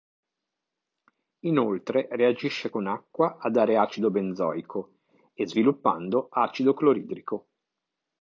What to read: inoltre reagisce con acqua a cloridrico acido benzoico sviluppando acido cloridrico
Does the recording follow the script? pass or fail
fail